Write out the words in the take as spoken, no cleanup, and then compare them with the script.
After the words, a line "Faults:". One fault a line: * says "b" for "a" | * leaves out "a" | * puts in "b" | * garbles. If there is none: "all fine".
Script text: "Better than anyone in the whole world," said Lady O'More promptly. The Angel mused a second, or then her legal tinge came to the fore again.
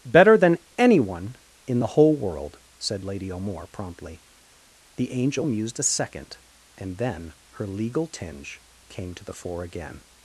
"Better than anyone in the whole world," said Lady O'More promptly. The Angel mused a second, and then her legal tinge came to the fore again.
Faults:
* says "and" for "or"